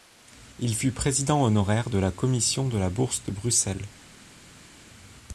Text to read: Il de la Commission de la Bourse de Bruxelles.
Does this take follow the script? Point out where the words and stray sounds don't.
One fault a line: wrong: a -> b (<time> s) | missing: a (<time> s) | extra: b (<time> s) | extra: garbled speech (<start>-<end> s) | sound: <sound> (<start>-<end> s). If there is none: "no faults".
extra: fut président honoraire (0.7 s)